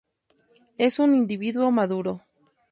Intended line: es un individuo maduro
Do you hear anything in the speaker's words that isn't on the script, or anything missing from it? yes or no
no